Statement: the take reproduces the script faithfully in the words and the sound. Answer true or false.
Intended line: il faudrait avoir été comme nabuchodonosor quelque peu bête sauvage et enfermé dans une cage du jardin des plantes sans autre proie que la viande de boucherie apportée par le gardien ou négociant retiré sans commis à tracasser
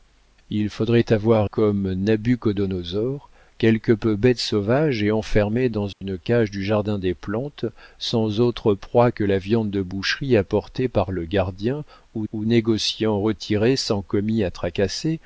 false